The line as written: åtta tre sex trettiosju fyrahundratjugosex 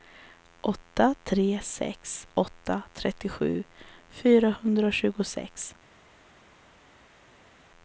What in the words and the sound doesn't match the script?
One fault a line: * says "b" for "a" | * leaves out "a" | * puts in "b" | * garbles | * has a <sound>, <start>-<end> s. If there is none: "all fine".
* puts in "åtta"